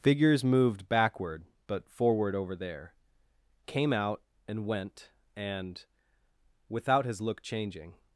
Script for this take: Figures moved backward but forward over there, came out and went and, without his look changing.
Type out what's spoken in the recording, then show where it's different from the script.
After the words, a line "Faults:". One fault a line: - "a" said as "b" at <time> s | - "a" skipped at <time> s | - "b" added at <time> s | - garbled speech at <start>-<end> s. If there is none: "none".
Figures moved backward but forward over there, came out and went and, without his look changing.
Faults:
none